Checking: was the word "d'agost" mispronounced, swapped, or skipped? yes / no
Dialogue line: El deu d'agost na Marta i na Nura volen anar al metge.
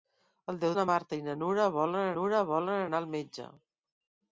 yes